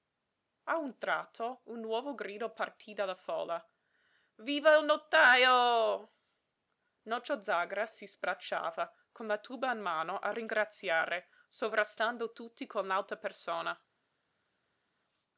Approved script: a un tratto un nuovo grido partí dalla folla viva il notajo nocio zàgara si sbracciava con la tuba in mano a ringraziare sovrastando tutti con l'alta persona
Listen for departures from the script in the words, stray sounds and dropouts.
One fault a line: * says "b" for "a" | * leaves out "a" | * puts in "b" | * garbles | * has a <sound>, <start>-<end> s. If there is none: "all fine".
all fine